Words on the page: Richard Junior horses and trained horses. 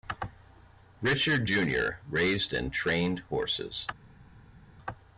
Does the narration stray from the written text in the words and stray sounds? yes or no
yes